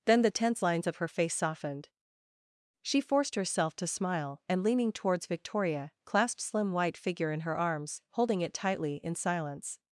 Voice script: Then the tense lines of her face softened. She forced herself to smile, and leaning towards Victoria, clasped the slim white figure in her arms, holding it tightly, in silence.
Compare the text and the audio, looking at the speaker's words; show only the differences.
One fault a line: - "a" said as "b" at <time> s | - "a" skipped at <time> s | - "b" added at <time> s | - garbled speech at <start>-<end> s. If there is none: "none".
- "the" skipped at 6.4 s